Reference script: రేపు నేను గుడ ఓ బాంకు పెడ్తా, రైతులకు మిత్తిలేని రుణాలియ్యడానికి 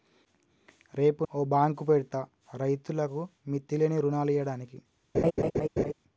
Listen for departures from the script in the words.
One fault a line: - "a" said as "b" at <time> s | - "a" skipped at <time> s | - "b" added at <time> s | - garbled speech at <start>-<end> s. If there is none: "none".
- "నేను గుడ" skipped at 1.2 s